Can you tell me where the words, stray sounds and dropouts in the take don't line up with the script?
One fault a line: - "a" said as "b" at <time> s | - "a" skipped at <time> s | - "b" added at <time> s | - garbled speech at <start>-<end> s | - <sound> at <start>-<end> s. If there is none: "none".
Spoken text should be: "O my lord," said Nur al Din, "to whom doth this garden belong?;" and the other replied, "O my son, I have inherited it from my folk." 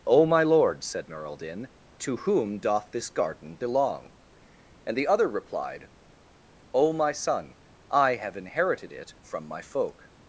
none